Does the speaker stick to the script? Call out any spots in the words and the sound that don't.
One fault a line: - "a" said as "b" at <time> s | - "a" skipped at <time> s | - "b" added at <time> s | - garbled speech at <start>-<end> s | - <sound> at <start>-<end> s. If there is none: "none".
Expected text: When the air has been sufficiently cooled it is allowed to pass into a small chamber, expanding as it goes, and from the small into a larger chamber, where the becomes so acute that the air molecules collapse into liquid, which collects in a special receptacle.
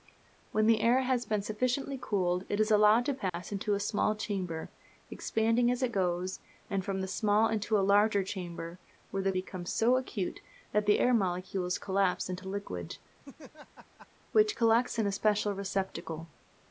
- dropout at 3.3-3.3 s
- laugh at 13.2-14.1 s